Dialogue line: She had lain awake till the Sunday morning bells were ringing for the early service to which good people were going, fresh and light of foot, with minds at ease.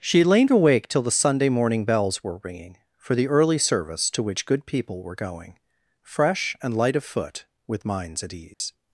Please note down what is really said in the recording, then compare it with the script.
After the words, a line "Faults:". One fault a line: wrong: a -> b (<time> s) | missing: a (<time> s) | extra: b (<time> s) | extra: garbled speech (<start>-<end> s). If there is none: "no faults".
She had lain awake till the Sunday morning bells were ringing for the early service to which good people were going, fresh and light of foot, with minds at ease.
Faults:
no faults